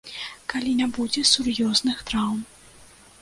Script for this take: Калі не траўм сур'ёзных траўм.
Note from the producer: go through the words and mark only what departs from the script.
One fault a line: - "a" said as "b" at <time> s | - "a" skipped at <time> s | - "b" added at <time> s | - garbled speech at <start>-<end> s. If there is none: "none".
- "траўм" said as "будзе" at 1.0 s